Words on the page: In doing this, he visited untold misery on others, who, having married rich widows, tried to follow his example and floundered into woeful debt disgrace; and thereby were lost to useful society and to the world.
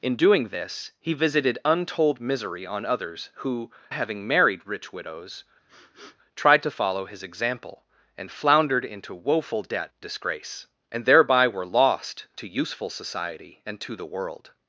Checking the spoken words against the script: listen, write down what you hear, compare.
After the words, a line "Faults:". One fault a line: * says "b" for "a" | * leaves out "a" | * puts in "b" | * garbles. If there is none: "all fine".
In doing this, he visited untold misery on others, who, having married rich widows, tried to follow his example and floundered into woeful debt disgrace; and thereby were lost to useful society and to the world.
Faults:
all fine